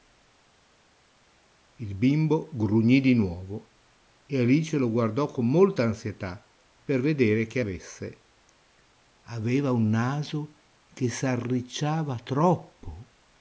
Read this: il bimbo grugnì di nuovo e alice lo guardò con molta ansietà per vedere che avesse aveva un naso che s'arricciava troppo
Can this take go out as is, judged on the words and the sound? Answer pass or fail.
pass